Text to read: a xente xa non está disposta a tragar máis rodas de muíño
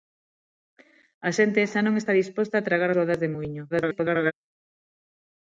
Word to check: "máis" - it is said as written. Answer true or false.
false